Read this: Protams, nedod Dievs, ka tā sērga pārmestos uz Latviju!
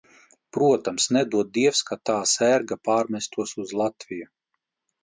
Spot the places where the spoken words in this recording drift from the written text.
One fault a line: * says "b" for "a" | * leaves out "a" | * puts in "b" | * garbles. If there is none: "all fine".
all fine